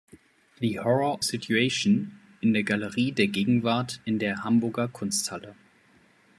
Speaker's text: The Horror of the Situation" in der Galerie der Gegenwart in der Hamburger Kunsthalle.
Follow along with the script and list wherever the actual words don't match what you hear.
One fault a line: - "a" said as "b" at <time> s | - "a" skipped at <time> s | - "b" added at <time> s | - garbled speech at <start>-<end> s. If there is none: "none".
- "of the" skipped at 1.2 s